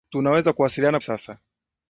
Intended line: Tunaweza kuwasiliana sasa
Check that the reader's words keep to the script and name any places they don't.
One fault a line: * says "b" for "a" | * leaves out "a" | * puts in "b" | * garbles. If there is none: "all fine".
all fine